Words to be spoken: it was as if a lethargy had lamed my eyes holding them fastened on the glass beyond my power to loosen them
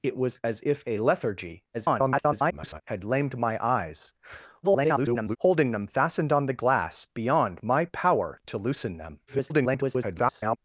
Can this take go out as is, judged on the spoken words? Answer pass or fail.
fail